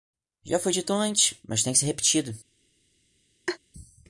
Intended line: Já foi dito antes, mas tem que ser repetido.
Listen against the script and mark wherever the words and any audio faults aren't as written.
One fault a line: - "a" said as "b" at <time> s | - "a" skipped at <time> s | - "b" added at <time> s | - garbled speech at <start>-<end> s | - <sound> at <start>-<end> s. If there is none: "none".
- laugh at 3.5-3.6 s